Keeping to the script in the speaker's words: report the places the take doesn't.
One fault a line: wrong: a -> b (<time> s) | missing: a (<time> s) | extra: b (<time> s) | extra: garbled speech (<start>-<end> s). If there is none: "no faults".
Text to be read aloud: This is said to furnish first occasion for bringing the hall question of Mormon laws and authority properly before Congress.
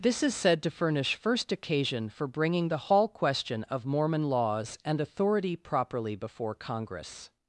no faults